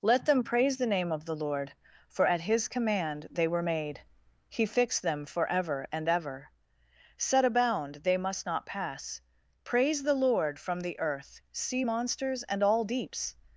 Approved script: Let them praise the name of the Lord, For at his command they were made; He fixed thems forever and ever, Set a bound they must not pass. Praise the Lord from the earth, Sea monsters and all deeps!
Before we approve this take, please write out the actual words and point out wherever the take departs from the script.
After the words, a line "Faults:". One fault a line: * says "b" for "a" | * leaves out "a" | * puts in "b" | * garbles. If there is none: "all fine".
Let them praise the name of the Lord, For at his command they were made; He fixed them forever and ever, Set a bound they must not pass. Praise the Lord from the earth, Sea monsters and all deeps!
Faults:
* says "them" for "thems"